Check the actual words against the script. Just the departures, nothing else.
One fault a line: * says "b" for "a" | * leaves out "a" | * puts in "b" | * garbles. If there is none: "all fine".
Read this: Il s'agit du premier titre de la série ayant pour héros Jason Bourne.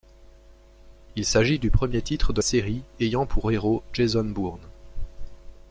* leaves out "la"